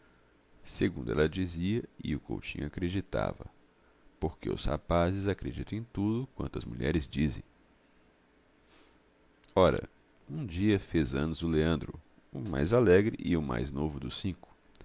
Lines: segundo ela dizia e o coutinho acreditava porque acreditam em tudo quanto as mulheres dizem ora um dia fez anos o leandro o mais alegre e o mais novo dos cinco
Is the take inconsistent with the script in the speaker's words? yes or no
yes